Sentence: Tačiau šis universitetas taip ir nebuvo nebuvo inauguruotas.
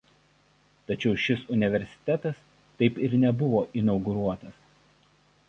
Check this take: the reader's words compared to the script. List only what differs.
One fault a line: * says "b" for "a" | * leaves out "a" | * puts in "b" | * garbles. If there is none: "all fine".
* leaves out "nebuvo"